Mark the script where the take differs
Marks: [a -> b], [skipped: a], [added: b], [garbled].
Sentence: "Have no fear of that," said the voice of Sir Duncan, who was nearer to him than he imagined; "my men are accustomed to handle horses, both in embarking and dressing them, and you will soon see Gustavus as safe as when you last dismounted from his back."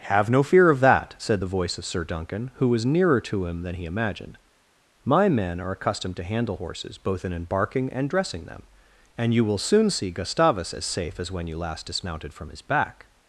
"Have no fear of that," said the voice of Sir Duncan, who was nearer to him than he imagined; "my men are accustomed to handle horses, both in embarking and dressing them, and you will soon see Gustavus as safe as when you last dismounted from his back."